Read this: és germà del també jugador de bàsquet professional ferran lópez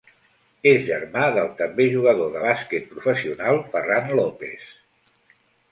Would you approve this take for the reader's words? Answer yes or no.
yes